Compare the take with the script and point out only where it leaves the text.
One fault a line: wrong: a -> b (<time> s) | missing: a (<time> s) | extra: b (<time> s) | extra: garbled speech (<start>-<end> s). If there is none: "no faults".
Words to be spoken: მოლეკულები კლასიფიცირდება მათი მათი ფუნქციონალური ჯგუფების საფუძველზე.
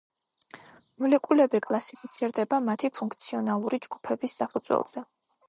missing: მათი (2.9 s)